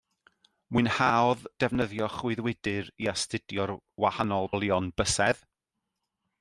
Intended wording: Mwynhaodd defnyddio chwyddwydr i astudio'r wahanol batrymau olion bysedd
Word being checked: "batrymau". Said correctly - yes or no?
no